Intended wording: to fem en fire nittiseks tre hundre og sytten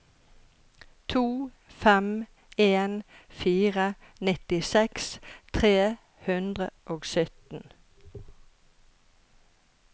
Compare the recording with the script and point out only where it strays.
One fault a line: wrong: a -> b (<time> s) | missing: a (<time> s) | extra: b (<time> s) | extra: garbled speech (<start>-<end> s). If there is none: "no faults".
no faults